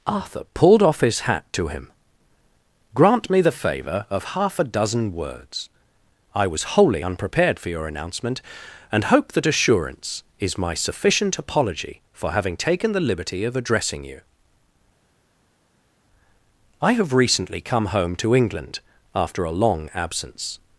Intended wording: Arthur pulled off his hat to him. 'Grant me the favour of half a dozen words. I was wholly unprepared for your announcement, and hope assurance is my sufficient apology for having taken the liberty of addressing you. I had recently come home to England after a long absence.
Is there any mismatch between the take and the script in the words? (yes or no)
yes